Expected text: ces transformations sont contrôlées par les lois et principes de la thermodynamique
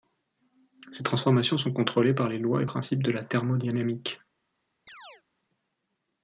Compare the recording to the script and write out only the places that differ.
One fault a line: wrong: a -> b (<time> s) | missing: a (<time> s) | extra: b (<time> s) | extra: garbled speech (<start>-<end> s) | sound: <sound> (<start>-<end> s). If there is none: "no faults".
sound: chirp (4.9-5.2 s)